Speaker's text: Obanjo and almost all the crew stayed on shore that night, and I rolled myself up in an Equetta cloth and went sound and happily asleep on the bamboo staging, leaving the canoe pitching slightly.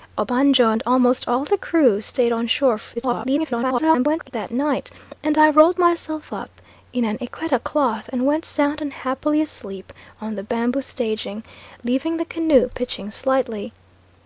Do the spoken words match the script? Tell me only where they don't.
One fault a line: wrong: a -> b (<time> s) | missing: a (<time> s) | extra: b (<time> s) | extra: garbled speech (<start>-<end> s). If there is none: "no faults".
extra: garbled speech (3.0-4.3 s)